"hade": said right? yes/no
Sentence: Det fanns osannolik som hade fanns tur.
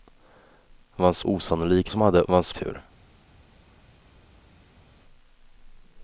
yes